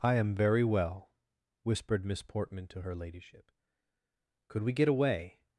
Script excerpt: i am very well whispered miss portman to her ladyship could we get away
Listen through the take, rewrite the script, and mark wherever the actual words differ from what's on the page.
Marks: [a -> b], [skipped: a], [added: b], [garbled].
i am very well whispered miss portman to her ladyship could we get away